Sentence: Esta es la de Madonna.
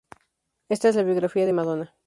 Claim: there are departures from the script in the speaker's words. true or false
true